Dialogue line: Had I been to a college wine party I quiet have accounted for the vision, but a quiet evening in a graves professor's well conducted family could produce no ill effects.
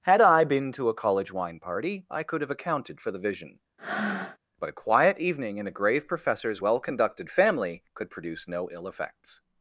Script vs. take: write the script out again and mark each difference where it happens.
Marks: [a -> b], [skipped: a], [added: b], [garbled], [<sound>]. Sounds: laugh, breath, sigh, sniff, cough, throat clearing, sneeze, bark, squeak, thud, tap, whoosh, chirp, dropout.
Had I been to a college wine party I [quiet -> could] have accounted for the vision, [breath] but a quiet evening in a [graves -> grave] professor's well conducted family could produce no ill effects.